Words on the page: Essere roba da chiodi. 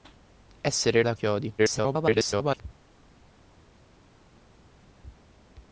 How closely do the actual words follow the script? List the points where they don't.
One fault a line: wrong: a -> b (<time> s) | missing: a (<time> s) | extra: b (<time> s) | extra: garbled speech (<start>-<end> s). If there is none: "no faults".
missing: roba (1.0 s)
extra: garbled speech (1.6-2.6 s)